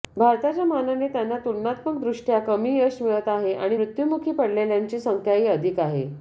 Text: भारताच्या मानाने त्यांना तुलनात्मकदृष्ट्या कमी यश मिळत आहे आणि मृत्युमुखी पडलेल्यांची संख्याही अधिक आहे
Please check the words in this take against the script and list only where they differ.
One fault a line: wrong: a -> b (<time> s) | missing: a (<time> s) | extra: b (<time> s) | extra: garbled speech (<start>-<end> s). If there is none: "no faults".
no faults